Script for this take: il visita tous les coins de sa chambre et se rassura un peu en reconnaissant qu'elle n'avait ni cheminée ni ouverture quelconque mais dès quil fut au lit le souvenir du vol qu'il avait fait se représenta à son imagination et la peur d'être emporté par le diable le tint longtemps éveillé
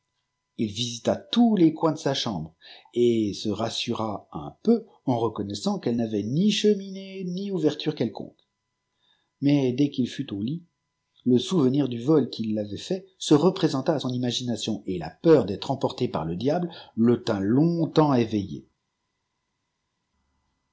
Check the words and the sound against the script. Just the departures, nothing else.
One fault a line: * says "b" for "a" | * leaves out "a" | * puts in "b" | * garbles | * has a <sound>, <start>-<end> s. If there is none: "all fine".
all fine